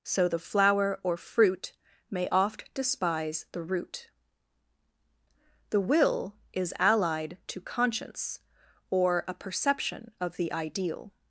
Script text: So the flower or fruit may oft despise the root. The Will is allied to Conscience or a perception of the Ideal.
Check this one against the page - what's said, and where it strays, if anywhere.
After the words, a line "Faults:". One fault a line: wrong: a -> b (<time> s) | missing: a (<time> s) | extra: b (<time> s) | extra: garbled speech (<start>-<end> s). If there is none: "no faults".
So the flower or fruit may oft despise the root. The Will is allied to Conscience or a perception of the Ideal.
Faults:
no faults